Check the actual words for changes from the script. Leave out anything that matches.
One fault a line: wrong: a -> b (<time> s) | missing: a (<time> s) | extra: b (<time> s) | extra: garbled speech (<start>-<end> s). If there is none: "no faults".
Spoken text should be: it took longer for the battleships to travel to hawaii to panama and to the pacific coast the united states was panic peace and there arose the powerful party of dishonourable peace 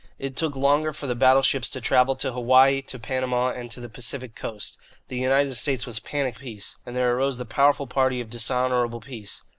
no faults